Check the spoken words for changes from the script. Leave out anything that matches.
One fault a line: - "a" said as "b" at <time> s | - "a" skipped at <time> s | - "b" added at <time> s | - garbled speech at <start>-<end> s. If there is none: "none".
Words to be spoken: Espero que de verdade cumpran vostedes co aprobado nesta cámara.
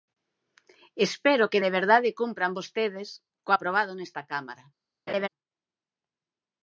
none